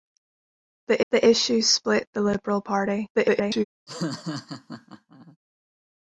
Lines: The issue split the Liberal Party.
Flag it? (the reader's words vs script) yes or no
yes